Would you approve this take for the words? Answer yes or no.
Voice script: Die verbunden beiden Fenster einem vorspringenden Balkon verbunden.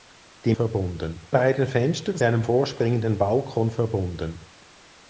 yes